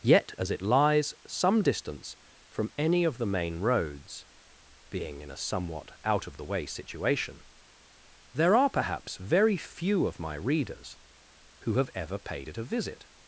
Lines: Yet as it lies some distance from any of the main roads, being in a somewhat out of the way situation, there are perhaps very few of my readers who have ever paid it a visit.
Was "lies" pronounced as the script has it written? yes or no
yes